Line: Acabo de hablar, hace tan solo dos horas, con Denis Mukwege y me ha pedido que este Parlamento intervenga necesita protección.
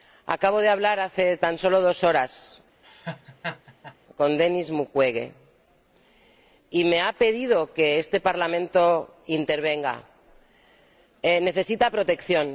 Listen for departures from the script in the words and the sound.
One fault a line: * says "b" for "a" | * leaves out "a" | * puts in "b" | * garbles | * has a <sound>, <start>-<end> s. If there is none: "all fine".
* has a laugh, 2.8-4.0 s